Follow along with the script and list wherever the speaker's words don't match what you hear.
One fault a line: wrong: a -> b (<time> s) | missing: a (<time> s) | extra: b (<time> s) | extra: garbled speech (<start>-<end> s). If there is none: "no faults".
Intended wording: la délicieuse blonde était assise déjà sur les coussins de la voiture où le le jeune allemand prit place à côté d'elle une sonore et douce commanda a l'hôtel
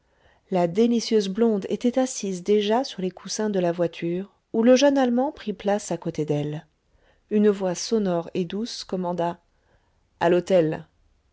missing: le (4.8 s)
extra: voix (7.5 s)